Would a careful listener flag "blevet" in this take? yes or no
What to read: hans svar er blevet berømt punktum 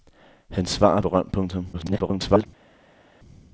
yes